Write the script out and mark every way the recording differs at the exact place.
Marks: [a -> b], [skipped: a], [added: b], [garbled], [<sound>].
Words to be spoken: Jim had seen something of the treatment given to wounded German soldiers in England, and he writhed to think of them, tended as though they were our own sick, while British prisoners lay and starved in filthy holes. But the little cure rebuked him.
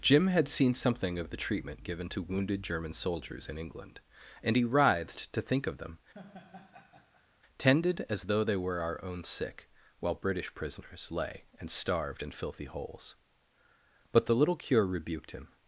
Jim had seen something of the treatment given to wounded German soldiers in England, and he writhed to think of them, [laugh] tended as though they were our own sick, while British prisoners lay and starved in filthy holes. But the little cure rebuked him.